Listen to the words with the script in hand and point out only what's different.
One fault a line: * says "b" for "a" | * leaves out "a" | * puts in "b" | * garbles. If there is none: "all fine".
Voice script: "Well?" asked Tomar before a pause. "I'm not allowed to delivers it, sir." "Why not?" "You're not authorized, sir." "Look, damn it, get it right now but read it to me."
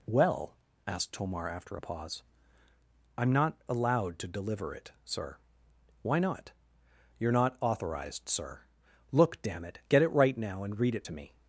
* says "after" for "before"
* says "deliver" for "delivers"
* says "and" for "but"